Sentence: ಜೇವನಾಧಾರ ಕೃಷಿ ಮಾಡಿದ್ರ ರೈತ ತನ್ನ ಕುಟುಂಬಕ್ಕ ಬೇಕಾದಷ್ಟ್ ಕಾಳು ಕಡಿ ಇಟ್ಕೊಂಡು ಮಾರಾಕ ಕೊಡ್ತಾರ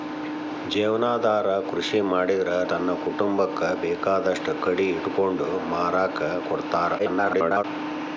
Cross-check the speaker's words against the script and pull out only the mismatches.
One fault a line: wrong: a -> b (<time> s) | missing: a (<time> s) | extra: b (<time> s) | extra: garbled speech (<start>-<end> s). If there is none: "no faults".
missing: ರೈತ (2.5 s)
missing: ಕಾಳು (4.5 s)
extra: garbled speech (7.0-7.6 s)